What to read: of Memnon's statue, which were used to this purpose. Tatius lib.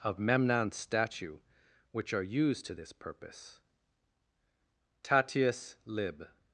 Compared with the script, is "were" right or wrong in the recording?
wrong